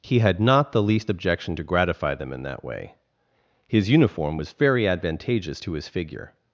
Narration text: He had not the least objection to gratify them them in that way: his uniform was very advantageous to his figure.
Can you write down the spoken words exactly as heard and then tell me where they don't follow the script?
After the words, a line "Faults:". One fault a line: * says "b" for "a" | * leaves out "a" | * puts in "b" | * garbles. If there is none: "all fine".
He had not the least objection to gratify them in that way: his uniform was very advantageous to his figure.
Faults:
* leaves out "them"